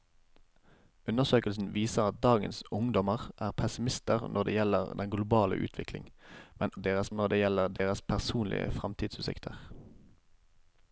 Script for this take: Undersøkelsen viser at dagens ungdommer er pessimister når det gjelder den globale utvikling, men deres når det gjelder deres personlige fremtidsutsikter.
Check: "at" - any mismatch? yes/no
no